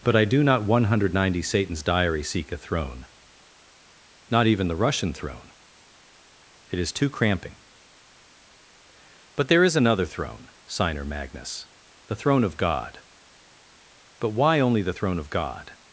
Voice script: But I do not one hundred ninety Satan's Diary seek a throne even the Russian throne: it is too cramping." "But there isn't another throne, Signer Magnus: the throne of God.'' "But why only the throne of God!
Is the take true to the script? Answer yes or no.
no